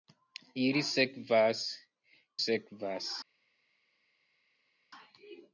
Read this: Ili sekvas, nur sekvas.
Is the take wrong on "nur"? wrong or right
wrong